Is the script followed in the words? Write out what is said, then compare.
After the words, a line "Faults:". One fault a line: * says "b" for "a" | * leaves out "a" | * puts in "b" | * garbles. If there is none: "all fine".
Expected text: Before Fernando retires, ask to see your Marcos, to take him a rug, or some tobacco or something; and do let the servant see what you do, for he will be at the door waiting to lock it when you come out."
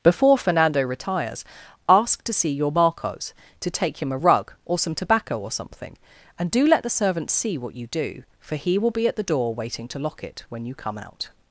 Before Fernando retires, ask to see your Marcos, to take him a rug, or some tobacco or something; and do let the servant see what you do, for he will be at the door waiting to lock it when you come out."
Faults:
all fine